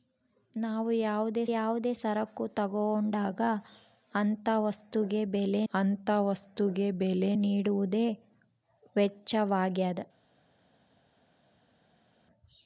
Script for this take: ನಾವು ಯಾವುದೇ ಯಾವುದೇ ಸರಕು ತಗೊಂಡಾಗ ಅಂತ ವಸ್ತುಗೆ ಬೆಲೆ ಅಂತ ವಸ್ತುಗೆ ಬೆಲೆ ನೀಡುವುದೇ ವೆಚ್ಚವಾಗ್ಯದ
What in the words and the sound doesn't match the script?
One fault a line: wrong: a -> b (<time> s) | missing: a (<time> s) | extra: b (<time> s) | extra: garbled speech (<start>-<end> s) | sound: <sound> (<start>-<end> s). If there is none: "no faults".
no faults